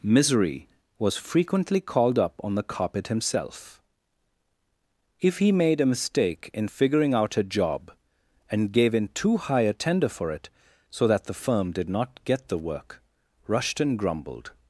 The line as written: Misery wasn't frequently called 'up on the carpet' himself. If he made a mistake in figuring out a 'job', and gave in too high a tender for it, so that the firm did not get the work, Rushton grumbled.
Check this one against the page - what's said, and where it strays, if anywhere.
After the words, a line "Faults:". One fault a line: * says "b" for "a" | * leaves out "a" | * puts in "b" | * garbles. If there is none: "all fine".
Misery was frequently called 'up on the carpet' himself. If he made a mistake in figuring out a 'job', and gave in too high a tender for it, so that the firm did not get the work, Rushton grumbled.
Faults:
* says "was" for "wasn't"